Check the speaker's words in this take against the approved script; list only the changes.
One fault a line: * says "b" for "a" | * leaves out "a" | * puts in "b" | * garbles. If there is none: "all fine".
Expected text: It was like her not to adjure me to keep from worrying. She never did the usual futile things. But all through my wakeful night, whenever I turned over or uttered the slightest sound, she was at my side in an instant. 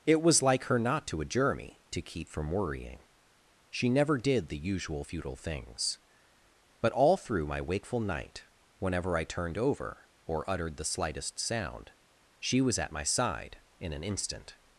all fine